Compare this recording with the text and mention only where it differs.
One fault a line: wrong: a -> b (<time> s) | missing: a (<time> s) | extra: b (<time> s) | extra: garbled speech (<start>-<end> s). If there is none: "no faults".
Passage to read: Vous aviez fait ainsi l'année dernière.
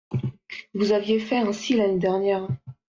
no faults